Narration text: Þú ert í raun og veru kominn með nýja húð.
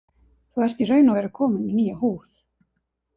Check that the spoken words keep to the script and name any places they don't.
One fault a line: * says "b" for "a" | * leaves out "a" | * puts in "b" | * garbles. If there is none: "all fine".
all fine